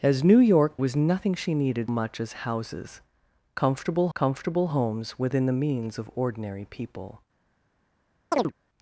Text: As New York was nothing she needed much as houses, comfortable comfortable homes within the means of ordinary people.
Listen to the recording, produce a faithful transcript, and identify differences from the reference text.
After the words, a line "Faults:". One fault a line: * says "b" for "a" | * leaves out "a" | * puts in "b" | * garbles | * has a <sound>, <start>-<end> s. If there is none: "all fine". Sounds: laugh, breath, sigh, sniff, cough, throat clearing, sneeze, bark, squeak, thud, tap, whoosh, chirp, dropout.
As New York was nothing she needed much as houses, comfortable comfortable homes within the means of ordinary people.
Faults:
* has a chirp, 8.3-8.5 s